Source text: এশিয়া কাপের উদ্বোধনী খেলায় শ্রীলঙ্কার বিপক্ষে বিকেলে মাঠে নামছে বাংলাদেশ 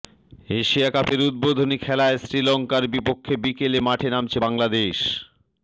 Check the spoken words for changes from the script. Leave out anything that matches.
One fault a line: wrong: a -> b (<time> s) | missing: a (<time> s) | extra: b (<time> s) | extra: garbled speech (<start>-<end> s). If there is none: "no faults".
no faults